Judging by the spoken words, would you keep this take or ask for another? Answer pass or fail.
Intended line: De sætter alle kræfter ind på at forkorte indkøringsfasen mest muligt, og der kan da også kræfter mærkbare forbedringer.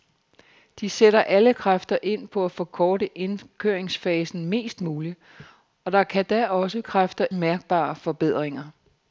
pass